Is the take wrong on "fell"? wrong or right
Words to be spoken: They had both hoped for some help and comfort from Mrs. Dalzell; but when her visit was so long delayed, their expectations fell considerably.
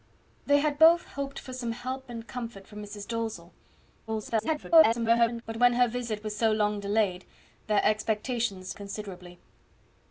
wrong